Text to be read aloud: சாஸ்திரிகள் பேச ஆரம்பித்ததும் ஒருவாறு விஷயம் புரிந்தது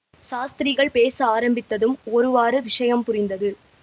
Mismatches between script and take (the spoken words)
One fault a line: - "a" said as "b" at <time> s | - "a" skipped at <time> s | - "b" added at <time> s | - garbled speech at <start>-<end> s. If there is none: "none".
none